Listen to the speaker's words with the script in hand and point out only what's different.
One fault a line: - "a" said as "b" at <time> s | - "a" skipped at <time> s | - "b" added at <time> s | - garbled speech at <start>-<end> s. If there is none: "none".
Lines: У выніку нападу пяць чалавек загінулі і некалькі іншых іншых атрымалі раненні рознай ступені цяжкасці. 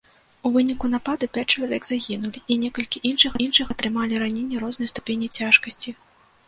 none